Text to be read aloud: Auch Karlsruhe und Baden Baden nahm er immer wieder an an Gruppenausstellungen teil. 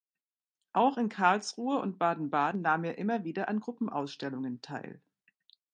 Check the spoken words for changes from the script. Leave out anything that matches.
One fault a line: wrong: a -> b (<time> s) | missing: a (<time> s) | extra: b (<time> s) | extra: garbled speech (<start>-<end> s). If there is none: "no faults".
extra: in (1.0 s)
missing: an (3.6 s)